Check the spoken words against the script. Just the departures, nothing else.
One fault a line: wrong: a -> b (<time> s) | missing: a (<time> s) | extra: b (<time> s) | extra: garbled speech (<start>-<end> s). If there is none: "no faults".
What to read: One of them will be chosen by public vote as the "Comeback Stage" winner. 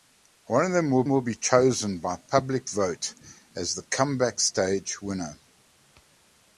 extra: will (1.1 s)